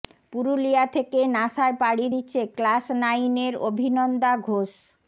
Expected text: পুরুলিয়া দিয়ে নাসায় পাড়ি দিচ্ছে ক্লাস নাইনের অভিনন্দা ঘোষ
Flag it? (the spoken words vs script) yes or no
yes